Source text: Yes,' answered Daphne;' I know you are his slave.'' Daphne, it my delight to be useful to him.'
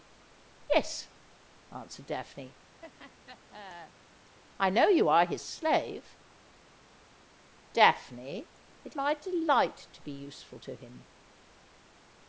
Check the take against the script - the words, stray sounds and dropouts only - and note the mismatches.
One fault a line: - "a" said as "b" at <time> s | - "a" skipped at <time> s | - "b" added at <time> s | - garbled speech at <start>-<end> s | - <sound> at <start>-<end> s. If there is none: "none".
- laugh at 2.8-4.4 s